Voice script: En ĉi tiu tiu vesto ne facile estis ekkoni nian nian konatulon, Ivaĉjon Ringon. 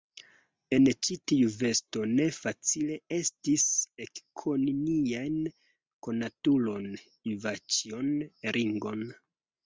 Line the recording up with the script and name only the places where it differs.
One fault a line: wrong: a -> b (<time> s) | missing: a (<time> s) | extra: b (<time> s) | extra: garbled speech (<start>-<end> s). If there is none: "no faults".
missing: tiu (1.5 s)
missing: nian (5.3 s)